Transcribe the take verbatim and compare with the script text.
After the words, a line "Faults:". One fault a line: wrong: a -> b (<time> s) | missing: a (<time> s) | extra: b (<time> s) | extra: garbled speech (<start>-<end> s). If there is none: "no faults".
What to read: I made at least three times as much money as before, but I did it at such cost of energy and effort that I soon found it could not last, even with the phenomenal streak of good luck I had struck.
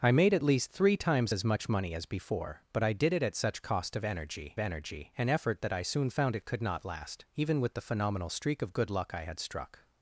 I made at least three times as much money as before, but I did it at such cost of energy energy and effort that I soon found it could not last, even with the phenomenal streak of good luck I had struck.
Faults:
extra: energy (4.6 s)